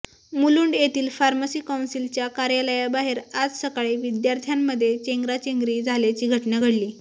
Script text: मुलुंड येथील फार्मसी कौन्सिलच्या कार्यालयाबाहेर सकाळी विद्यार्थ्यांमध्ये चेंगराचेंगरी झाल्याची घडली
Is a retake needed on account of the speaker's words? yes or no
yes